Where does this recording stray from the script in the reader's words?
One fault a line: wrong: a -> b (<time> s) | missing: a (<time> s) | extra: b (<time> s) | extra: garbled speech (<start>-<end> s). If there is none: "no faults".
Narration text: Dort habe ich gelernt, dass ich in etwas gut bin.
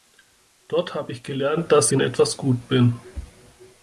missing: ich (1.9 s)